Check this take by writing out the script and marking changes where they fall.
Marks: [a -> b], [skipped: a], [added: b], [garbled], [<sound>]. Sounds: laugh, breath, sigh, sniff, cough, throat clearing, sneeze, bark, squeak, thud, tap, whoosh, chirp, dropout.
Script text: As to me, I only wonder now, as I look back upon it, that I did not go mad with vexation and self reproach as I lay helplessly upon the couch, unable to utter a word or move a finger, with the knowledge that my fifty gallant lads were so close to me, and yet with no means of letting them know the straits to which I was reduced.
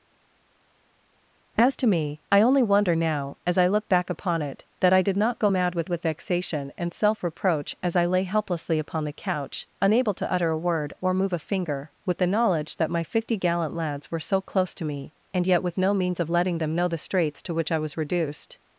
As to me, I only wonder now, as I look back upon it, that I did not go mad with [added: with] vexation and self reproach as I lay helplessly upon the couch, unable to utter a word or move a finger, with the knowledge that my fifty gallant lads were so close to me, and yet with no means of letting them know the straits to which I was reduced.